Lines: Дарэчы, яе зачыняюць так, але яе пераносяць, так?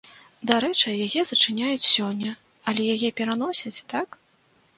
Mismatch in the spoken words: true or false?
true